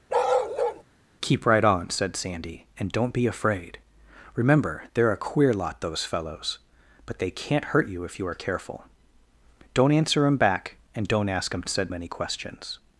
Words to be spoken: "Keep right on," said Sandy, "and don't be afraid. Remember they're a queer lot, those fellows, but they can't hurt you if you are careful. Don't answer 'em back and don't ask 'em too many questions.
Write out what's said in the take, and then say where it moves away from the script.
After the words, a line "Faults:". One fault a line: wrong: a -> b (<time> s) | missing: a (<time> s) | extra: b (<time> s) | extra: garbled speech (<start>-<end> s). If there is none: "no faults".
"Keep right on," said Sandy, "and don't be afraid. Remember they're a queer lot, those fellows, but they can't hurt you if you are careful. Don't answer 'em back and don't ask 'em said many questions.
Faults:
wrong: too -> said (11.7 s)